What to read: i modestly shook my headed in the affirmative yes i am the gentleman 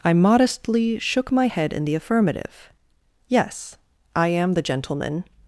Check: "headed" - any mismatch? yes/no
yes